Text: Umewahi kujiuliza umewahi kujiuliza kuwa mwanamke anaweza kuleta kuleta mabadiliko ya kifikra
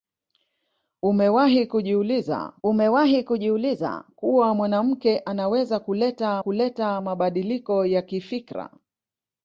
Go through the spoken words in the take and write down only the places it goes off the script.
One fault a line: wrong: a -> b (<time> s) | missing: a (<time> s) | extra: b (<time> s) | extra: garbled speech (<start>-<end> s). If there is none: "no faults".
no faults